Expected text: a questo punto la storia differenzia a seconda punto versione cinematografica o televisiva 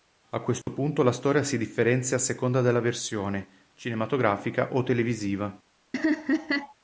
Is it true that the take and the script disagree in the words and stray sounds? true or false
true